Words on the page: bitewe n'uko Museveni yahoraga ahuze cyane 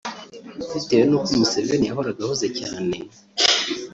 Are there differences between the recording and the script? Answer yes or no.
no